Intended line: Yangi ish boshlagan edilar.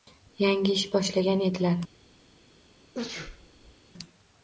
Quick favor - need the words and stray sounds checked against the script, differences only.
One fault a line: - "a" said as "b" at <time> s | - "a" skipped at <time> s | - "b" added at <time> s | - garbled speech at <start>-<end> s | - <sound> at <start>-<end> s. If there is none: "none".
- sneeze at 2.9-3.8 s